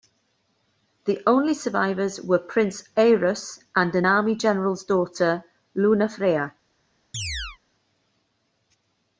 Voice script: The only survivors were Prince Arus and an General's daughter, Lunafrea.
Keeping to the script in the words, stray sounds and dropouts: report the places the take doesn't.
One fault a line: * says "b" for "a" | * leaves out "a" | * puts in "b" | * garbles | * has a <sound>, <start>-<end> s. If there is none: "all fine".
* puts in "army"
* has a chirp, 7.1-7.6 s